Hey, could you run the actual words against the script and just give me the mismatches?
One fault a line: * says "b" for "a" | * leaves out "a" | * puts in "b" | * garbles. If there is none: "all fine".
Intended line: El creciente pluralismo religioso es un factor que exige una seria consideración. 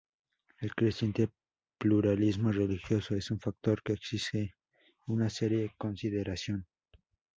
all fine